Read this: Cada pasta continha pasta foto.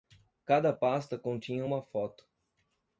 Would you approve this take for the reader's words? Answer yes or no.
no